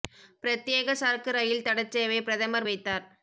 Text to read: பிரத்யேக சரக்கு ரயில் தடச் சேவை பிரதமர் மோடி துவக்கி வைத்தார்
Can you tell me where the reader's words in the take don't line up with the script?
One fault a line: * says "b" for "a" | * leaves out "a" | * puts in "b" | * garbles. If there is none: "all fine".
* leaves out "மோடி துவக்கி"